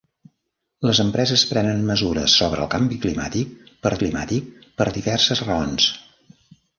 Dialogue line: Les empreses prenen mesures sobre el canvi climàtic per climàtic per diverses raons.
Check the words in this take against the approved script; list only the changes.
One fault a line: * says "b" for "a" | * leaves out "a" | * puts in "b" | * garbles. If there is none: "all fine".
all fine